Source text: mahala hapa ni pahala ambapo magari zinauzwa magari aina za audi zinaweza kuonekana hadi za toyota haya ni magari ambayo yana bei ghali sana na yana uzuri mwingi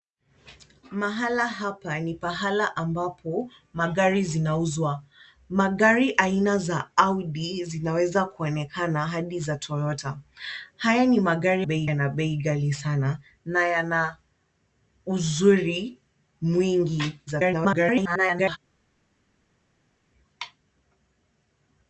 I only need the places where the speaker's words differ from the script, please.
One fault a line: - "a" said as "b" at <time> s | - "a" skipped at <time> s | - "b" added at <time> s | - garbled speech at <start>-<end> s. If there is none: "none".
- "ambayo" said as "bei" at 11.6 s
- garbled speech at 17.3-18.6 s